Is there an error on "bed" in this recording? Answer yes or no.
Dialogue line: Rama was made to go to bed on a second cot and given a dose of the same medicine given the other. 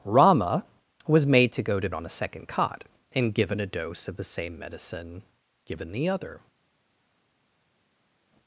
yes